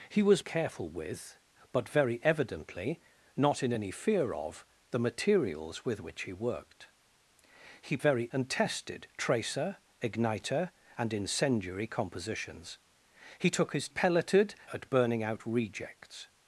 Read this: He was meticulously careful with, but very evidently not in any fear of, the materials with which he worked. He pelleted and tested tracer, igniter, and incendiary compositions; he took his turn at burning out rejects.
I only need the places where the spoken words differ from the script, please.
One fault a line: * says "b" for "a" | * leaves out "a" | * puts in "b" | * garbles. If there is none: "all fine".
* leaves out "meticulously"
* says "very" for "pelleted"
* says "pelleted" for "turn"